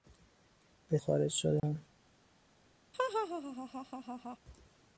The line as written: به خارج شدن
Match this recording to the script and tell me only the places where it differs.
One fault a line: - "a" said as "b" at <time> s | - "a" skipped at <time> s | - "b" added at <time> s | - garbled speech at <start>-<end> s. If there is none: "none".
none